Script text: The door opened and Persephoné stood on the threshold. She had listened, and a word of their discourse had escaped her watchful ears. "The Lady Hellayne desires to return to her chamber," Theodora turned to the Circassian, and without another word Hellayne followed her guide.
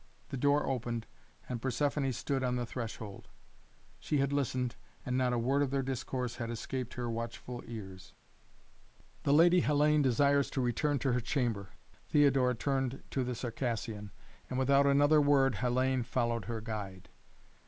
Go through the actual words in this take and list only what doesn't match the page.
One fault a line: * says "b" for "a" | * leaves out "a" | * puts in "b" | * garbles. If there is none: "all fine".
* puts in "not"